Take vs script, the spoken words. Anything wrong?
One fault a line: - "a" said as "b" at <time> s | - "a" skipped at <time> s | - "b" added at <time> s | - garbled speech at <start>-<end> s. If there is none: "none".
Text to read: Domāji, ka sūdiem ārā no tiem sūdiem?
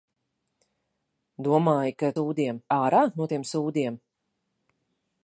none